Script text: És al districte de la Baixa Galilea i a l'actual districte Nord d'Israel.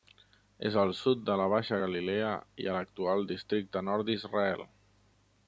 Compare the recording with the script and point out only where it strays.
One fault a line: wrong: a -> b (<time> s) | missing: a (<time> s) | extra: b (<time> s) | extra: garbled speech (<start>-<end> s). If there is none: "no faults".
wrong: districte -> sud (1.0 s)